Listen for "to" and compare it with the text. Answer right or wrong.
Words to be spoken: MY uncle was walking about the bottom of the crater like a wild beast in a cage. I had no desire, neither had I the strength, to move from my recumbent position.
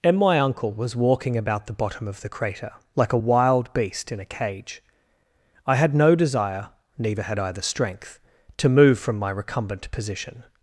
right